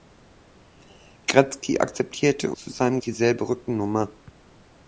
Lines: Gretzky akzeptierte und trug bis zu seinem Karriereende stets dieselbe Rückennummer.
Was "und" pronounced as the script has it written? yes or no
no